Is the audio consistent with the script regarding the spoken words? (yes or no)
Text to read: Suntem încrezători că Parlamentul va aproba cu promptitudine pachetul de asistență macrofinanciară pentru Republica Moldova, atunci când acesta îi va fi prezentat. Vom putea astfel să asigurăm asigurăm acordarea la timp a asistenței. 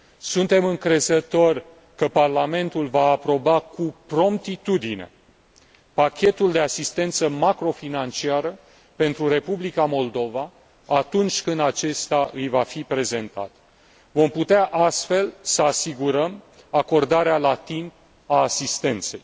no